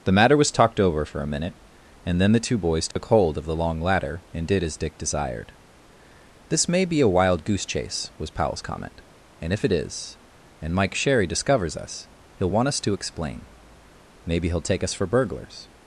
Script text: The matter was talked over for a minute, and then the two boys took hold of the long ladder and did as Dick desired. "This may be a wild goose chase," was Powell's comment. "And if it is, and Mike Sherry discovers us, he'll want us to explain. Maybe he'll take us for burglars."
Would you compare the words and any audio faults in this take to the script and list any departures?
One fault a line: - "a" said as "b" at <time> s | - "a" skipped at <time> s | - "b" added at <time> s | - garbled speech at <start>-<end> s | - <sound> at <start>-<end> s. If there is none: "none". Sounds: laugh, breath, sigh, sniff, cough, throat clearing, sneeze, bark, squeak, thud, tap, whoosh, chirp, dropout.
- dropout at 2.9-3.0 s